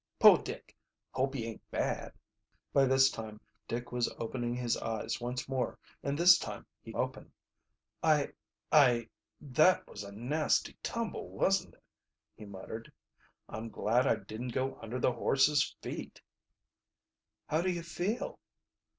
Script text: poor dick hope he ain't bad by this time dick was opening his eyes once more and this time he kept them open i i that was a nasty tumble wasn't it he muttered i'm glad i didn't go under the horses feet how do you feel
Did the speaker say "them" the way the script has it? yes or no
no